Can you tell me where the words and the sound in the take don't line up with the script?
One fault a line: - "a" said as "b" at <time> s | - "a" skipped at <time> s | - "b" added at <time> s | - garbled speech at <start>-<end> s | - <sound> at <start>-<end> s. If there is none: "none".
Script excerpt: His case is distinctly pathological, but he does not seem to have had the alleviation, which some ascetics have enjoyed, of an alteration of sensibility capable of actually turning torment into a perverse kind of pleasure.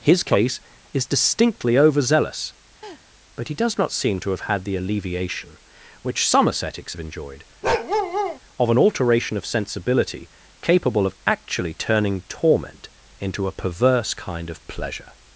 - "pathological" said as "overzealous" at 1.8 s
- laugh at 2.8-3.0 s
- bark at 7.6-8.4 s